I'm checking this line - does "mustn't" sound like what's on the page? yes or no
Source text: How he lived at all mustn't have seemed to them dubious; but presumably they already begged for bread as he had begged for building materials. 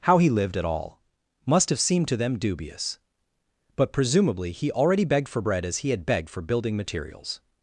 no